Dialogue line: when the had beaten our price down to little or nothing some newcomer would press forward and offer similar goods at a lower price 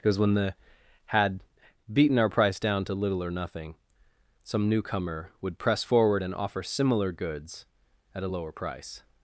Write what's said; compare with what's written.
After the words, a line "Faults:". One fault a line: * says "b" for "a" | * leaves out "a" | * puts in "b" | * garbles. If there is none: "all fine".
because when the had beaten our price down to little or nothing some newcomer would press forward and offer similar goods at a lower price
Faults:
* puts in "because"